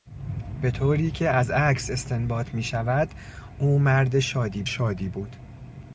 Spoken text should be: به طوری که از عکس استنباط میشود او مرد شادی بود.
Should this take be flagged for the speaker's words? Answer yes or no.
yes